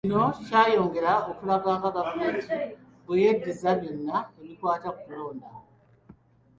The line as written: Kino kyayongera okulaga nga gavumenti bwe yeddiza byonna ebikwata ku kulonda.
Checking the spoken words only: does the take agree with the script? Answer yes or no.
yes